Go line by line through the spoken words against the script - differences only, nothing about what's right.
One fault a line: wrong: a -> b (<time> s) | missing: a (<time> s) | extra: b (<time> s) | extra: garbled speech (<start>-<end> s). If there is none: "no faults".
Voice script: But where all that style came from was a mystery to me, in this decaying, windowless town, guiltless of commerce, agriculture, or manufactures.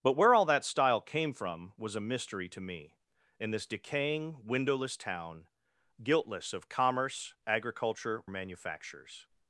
missing: or (8.2 s)